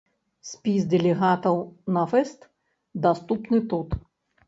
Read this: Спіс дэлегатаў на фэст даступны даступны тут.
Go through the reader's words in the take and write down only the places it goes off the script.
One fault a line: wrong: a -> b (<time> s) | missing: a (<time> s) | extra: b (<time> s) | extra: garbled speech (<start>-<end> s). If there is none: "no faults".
missing: даступны (3.6 s)